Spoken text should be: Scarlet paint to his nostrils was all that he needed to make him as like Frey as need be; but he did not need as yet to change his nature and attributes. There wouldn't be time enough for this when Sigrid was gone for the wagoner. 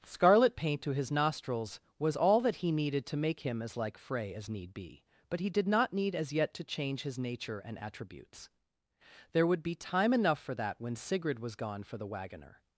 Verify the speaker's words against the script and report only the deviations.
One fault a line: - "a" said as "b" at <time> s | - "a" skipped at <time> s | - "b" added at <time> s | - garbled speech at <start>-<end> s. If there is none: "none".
- "wouldn't" said as "would" at 9.5 s
- "this" said as "that" at 10.5 s